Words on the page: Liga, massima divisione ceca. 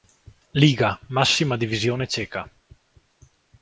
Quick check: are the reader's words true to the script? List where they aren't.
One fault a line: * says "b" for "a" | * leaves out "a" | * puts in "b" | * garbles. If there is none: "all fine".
all fine